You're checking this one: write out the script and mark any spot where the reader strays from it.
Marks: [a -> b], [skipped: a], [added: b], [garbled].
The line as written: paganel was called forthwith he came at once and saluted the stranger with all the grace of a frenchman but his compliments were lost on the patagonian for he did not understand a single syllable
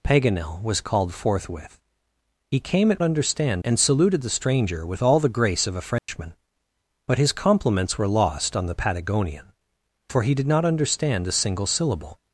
paganel was called forthwith he came at [once -> understand] and saluted the stranger with all the grace of a frenchman but his compliments were lost on the patagonian for he did not understand a single syllable